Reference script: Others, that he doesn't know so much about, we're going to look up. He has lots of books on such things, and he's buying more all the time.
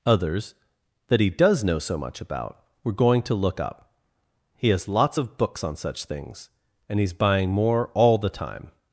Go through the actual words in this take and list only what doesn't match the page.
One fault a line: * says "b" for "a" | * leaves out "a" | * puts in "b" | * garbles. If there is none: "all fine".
* says "does" for "doesn't"